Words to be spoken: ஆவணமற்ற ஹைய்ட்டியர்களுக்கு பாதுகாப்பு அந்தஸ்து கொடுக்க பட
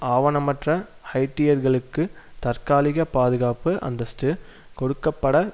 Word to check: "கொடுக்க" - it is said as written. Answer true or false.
true